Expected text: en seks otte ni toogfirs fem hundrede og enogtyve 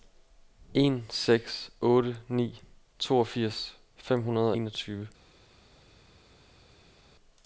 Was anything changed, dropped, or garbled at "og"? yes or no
yes